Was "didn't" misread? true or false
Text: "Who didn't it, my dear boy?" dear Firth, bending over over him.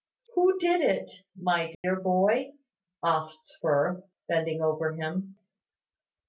true